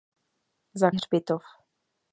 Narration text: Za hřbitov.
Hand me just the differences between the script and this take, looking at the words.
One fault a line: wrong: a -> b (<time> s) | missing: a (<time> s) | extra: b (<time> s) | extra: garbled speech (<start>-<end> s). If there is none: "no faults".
no faults